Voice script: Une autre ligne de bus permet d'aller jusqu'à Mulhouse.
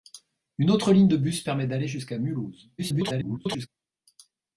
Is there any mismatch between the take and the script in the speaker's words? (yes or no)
yes